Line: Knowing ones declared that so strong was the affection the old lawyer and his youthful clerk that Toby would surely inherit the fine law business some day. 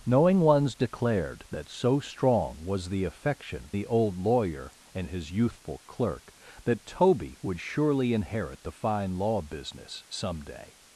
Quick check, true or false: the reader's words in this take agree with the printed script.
true